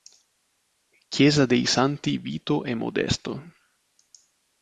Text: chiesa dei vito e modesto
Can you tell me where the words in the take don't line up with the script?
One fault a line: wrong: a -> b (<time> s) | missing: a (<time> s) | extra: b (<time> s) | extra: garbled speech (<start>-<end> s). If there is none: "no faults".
extra: santi (1.7 s)